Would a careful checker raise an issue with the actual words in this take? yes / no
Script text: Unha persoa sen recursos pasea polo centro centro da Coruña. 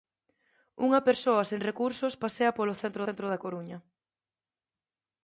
no